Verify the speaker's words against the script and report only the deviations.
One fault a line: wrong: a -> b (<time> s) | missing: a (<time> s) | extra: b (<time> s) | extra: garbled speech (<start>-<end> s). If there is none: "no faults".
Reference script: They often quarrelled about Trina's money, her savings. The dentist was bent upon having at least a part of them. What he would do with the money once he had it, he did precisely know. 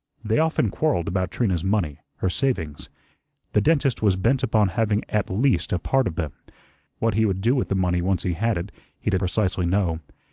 no faults